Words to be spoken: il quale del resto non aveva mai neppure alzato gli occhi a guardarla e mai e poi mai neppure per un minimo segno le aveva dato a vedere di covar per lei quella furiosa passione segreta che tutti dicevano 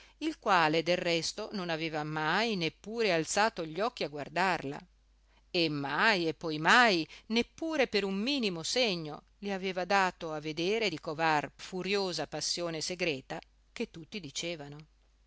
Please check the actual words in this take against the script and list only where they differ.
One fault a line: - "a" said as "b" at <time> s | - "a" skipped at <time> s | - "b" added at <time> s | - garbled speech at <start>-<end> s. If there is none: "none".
- "per lei quella" skipped at 11.5 s